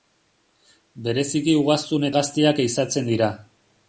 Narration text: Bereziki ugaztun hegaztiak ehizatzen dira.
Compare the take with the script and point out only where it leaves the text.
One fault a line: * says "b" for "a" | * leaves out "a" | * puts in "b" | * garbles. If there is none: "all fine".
all fine